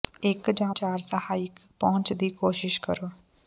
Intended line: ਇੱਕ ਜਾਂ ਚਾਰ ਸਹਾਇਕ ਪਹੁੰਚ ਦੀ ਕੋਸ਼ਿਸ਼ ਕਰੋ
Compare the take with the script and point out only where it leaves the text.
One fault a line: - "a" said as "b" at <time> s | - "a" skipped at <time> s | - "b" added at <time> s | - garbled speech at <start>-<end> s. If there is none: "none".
none